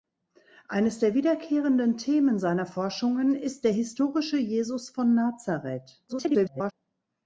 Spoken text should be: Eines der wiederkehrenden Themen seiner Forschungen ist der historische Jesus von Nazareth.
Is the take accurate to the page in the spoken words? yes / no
no